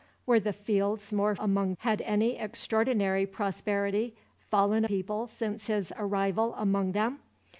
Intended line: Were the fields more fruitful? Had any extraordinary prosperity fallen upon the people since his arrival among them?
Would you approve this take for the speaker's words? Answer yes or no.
no